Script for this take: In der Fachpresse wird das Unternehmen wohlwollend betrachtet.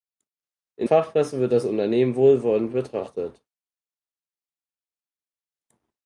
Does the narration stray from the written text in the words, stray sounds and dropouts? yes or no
yes